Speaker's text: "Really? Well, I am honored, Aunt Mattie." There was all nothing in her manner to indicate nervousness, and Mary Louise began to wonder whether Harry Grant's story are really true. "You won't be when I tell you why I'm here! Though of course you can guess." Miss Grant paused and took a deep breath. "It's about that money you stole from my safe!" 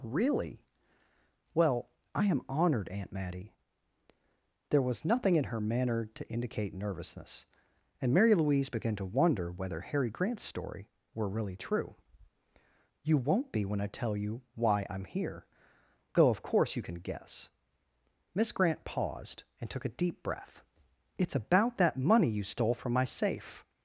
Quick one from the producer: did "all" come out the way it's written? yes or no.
no